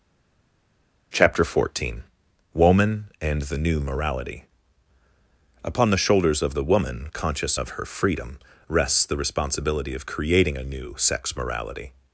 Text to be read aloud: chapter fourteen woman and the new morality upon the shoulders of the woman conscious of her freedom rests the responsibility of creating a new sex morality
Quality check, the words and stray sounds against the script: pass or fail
pass